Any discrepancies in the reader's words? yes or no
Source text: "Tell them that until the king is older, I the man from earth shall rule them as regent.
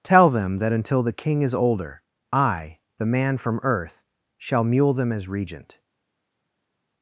yes